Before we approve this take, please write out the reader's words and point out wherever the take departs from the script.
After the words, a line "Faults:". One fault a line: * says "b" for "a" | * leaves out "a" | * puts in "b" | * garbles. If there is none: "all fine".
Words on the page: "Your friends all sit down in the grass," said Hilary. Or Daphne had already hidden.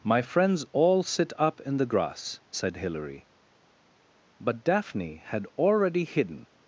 "My friends all sit up in the grass," said Hilary. But Daphne had already hidden.
Faults:
* says "My" for "Your"
* says "up" for "down"
* says "But" for "Or"